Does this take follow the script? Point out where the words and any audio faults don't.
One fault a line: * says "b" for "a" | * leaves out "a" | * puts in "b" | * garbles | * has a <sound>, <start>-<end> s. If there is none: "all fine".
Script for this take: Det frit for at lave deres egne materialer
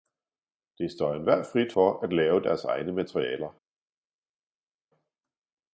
* puts in "står enhver"